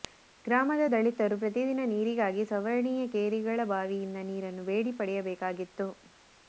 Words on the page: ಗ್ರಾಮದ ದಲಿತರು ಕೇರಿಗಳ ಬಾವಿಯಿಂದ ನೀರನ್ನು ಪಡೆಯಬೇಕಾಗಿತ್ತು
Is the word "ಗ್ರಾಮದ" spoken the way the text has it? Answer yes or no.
yes